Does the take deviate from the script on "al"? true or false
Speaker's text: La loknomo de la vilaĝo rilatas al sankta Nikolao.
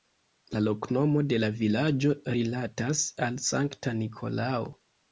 false